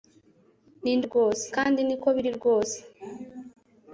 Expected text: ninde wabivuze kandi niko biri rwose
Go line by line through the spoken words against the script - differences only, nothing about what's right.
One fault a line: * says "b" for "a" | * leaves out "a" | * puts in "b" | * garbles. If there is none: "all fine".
* says "rwose" for "wabivuze"